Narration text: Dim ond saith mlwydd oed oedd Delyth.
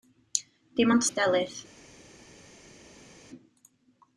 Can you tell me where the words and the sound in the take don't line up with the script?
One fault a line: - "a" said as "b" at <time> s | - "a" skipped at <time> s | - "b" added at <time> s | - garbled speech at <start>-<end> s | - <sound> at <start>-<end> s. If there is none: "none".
- "saith mlwydd oed" skipped at 1.1 s